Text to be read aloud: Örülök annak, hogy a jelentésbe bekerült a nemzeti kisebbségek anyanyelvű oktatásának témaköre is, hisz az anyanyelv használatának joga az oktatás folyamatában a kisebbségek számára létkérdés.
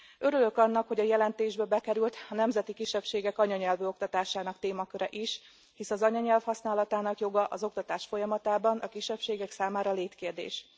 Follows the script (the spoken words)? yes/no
yes